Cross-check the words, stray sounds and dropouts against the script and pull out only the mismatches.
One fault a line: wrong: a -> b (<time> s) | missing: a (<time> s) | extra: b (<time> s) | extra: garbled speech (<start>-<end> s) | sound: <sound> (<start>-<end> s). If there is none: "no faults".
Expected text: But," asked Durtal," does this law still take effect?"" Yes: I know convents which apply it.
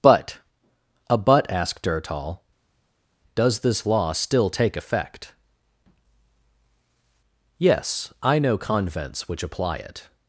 extra: a but (1.1 s)